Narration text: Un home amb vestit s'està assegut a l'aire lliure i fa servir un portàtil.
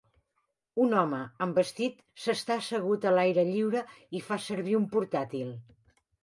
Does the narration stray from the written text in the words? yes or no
no